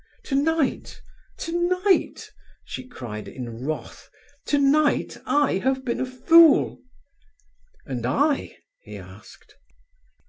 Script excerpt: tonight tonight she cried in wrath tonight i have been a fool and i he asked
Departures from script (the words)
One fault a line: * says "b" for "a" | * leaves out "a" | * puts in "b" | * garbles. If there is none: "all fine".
all fine